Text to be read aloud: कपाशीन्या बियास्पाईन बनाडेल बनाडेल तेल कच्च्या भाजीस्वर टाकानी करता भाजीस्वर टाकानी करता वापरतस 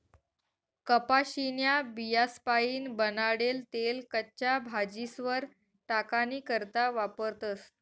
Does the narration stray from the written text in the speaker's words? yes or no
yes